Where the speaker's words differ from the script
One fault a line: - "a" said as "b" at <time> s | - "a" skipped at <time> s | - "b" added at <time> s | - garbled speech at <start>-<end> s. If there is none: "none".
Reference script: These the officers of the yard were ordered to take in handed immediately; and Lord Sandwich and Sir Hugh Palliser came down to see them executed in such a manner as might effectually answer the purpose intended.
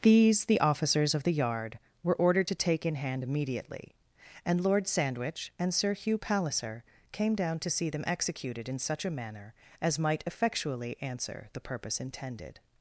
- "handed" said as "hand" at 2.9 s